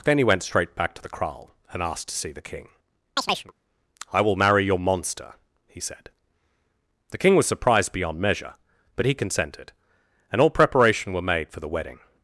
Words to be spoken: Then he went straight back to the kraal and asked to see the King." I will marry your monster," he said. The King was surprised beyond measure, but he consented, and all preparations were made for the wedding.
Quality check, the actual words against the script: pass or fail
fail